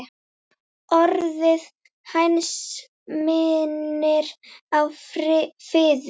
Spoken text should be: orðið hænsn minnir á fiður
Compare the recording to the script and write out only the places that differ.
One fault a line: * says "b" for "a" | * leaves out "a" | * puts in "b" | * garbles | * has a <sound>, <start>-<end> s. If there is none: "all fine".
all fine